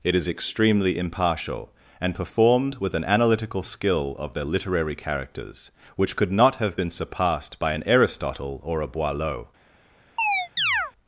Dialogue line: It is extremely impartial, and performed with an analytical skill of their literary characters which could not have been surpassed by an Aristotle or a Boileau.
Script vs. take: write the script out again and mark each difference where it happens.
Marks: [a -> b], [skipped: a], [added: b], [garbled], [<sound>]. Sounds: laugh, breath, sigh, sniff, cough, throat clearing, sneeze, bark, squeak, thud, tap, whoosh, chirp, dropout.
It is extremely impartial, and performed with an analytical skill of their literary characters which could not have been surpassed by an Aristotle or a Boileau. [chirp]